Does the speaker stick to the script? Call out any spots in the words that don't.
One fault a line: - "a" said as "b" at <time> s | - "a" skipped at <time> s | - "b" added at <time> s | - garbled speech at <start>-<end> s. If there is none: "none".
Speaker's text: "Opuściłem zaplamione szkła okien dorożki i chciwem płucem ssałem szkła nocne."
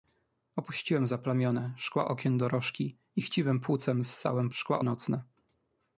none